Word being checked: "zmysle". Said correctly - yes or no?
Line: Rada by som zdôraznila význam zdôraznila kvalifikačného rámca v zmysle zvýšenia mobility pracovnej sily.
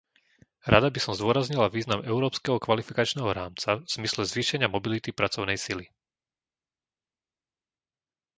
yes